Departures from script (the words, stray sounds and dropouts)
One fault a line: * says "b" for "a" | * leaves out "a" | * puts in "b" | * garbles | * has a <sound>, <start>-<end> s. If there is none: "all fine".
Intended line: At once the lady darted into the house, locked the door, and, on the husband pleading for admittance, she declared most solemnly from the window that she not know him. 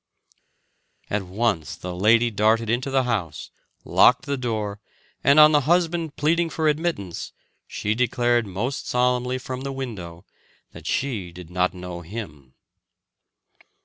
* puts in "did"